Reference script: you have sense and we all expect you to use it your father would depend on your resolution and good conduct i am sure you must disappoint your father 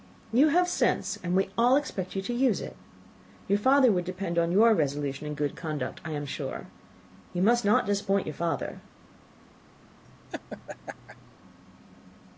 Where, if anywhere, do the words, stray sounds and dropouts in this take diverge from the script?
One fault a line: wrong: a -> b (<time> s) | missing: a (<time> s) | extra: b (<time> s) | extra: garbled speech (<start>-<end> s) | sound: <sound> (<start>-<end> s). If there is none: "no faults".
extra: not (7.6 s)
sound: laugh (10.0-11.4 s)